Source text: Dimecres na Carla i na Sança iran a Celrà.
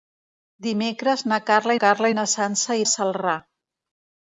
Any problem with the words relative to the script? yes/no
yes